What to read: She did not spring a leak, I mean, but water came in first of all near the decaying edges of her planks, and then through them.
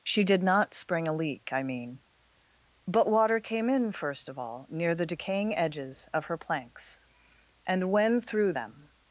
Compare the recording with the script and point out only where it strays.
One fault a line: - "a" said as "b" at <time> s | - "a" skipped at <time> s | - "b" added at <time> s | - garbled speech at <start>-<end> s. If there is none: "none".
- "then" said as "when" at 7.9 s